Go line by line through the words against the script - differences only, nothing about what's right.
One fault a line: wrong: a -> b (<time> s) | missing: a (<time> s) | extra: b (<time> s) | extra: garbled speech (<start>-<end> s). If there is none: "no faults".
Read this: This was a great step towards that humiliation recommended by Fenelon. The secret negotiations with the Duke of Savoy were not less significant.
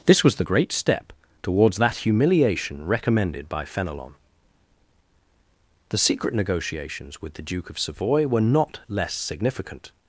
wrong: a -> the (0.3 s)